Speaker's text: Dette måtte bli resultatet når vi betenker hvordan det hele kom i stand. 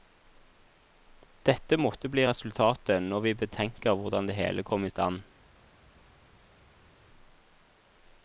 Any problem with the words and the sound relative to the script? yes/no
no